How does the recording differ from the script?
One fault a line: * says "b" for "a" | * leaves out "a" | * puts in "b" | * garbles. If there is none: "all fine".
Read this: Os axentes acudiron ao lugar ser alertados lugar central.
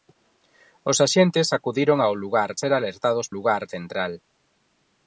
all fine